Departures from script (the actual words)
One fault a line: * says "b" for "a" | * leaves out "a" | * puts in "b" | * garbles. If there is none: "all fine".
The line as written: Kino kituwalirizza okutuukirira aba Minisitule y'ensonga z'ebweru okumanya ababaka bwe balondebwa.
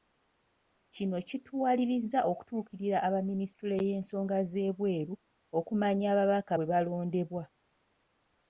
all fine